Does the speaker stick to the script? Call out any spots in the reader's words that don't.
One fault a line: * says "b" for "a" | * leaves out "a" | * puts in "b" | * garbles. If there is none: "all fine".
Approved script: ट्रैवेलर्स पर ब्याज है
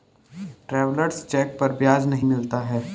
* puts in "चेक"
* puts in "नहीं मिलता"